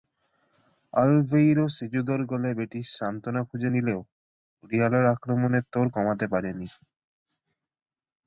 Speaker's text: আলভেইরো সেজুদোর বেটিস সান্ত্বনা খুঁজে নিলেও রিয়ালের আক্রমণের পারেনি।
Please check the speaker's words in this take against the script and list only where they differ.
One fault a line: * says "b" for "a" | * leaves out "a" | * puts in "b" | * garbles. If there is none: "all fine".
* puts in "গোলে"
* puts in "তোড় কমাতে"